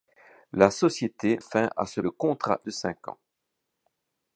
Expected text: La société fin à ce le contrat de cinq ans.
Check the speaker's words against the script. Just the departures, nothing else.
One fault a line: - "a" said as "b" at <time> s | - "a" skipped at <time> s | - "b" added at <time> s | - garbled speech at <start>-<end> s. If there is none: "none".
none